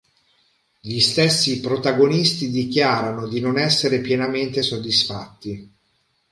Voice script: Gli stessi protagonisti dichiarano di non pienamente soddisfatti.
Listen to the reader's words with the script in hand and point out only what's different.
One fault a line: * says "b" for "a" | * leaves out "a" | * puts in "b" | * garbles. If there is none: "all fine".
* puts in "essere"